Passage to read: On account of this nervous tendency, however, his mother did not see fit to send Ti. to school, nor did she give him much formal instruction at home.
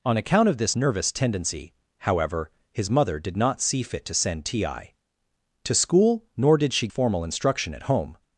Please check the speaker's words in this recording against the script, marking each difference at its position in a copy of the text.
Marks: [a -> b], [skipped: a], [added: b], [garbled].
On account of this nervous tendency, however, his mother did not see fit to send Ti. to school, nor did she [skipped: give him much] formal instruction at home.